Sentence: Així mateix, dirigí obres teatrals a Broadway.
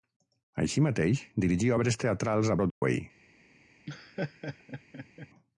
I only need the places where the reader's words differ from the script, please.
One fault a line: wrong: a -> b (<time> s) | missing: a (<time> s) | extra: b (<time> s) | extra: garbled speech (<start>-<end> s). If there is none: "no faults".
no faults